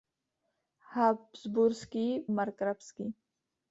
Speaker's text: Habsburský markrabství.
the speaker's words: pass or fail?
pass